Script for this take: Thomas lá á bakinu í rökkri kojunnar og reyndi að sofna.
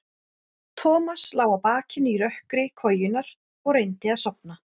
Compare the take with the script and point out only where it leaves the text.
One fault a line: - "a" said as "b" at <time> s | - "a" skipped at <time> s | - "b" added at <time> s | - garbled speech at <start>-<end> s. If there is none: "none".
none